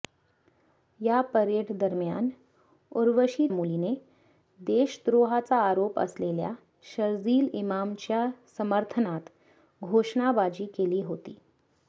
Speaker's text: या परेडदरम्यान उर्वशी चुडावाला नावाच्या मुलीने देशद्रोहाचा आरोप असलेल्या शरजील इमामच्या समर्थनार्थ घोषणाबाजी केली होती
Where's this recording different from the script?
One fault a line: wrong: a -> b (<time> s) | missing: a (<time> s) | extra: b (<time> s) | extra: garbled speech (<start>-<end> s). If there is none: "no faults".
missing: चुडावाला नावाच्या (3.5 s)